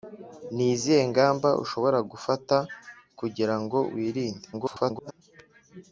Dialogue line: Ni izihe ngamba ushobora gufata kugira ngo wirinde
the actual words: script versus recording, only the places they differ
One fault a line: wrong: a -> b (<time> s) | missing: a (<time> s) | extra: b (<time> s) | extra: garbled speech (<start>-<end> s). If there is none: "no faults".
extra: garbled speech (4.5-5.1 s)